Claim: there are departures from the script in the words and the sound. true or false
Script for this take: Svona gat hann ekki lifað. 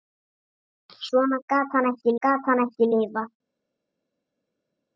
true